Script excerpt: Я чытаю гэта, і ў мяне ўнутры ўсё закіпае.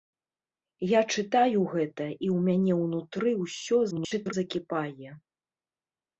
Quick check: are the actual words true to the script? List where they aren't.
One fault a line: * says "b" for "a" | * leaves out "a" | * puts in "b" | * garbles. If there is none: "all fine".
* garbles